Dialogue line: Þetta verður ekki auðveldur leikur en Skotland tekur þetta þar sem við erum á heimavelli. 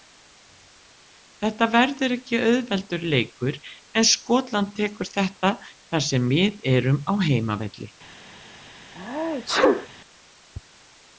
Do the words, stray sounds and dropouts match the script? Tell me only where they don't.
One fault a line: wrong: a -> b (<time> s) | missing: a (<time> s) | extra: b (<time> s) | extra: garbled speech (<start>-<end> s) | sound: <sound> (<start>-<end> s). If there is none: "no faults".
sound: sneeze (9.0-9.9 s)